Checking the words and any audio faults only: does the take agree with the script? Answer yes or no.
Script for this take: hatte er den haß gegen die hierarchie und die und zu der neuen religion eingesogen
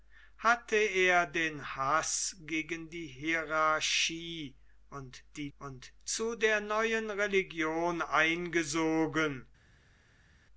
yes